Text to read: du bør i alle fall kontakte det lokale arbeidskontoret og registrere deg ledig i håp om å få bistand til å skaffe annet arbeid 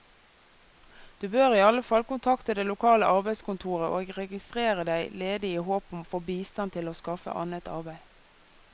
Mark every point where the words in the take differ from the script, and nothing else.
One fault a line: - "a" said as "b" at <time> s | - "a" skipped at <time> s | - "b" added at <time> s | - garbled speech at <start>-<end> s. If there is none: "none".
none